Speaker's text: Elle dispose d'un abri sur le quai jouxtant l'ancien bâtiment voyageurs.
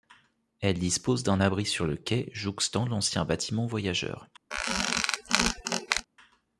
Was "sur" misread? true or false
false